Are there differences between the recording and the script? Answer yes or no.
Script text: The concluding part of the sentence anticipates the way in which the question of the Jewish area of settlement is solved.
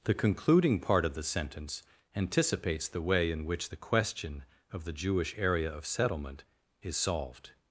no